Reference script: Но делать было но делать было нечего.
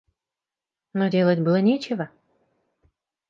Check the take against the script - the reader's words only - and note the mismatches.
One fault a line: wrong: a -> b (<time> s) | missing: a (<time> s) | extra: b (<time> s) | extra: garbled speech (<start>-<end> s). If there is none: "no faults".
missing: но делать было (1.6 s)